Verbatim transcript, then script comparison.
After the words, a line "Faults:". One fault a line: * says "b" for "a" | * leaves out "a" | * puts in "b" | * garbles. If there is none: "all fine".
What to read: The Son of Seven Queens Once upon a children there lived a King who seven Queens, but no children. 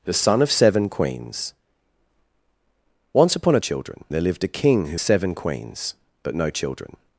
The Son of Seven Queens Once upon a children there lived a King who seven Queens, but no children.
Faults:
all fine